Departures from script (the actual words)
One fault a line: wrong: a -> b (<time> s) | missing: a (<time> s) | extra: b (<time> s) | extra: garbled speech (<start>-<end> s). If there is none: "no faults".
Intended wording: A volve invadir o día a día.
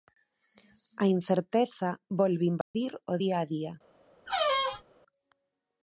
extra: incerteza (1.2 s)